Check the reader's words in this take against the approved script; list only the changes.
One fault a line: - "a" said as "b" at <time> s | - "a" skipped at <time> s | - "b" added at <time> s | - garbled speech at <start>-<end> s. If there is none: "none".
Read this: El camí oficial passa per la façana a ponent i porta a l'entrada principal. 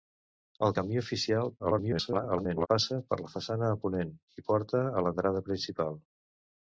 - garbled speech at 1.6-2.7 s